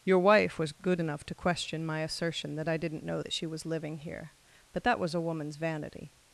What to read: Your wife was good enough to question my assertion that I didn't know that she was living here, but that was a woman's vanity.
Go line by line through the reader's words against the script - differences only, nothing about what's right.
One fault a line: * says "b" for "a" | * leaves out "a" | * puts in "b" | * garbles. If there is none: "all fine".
all fine